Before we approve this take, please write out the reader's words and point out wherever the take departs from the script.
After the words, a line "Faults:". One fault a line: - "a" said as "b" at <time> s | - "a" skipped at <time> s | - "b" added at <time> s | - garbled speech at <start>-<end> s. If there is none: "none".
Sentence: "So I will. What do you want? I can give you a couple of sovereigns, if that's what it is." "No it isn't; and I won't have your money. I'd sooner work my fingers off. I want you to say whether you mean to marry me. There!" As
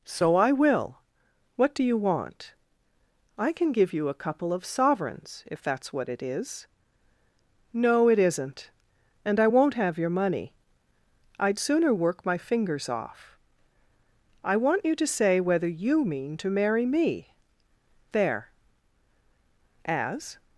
"So I will. What do you want? I can give you a couple of sovereigns, if that's what it is." "No it isn't; and I won't have your money. I'd sooner work my fingers off. I want you to say whether you mean to marry me. There!" As
Faults:
none